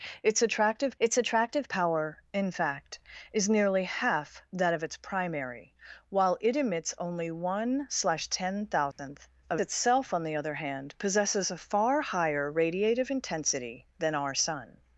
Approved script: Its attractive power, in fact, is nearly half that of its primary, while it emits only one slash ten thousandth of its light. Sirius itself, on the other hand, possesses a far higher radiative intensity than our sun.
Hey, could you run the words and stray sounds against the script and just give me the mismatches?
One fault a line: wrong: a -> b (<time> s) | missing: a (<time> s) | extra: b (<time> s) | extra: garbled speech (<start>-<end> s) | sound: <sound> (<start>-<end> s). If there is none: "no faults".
extra: its attractive (1.0 s)
sound: dropout (8.9-9.0 s)
missing: its light Sirius (9.6 s)